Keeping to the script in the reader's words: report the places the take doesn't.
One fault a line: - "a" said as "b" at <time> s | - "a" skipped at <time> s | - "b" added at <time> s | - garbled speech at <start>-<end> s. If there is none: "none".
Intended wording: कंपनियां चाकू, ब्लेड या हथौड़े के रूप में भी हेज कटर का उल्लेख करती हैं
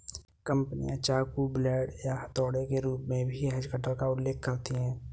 none